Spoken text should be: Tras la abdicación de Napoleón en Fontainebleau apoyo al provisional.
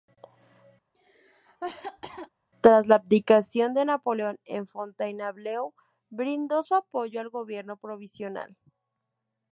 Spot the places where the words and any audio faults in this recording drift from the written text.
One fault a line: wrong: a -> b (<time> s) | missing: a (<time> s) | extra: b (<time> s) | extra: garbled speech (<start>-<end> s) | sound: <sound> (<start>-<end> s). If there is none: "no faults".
sound: cough (0.9-2.3 s)
extra: brindó su (6.1 s)
extra: gobierno (7.3 s)